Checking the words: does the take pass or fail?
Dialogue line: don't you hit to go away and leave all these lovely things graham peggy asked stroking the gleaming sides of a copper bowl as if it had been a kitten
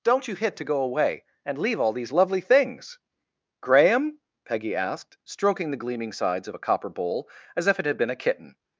pass